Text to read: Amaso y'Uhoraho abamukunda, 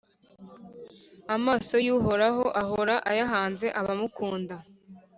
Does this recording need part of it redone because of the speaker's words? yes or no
yes